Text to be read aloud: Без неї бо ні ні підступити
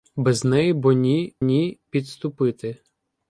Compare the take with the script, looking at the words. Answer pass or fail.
pass